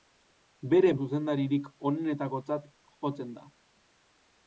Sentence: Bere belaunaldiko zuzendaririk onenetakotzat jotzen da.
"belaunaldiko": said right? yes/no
no